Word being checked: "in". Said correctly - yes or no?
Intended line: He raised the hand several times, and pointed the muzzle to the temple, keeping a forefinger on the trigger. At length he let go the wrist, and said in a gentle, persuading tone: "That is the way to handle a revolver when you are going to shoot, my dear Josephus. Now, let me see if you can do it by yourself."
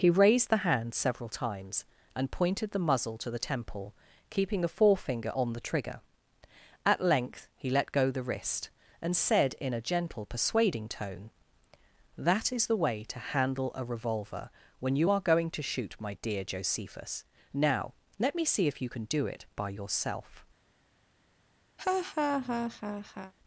yes